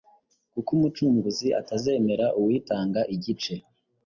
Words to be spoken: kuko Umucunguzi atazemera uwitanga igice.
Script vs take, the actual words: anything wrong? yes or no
no